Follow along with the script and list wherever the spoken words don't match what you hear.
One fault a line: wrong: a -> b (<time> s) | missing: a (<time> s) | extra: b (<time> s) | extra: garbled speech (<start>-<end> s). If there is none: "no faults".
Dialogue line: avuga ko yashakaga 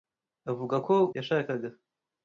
no faults